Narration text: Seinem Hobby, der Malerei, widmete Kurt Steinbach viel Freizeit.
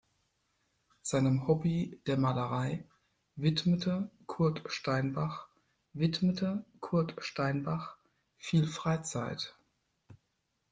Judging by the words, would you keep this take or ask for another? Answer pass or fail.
fail